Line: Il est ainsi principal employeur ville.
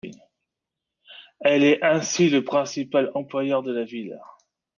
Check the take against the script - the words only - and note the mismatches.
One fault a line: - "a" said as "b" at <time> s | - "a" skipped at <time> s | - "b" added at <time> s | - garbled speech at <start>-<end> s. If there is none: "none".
- "Il" said as "Elle" at 1.4 s
- "le" added at 2.3 s
- "de la" added at 3.6 s